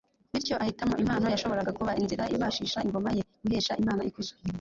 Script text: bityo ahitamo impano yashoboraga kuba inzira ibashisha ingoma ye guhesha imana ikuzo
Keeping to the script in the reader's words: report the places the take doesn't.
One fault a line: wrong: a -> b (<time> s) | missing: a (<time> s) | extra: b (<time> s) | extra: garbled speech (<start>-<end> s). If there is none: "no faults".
no faults